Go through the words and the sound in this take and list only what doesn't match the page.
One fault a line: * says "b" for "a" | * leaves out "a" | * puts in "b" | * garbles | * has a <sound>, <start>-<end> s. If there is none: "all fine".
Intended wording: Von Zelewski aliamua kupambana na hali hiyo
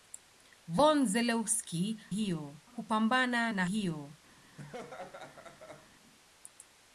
* says "hiyo" for "aliamua"
* leaves out "hali"
* has a laugh, 4.6-5.9 s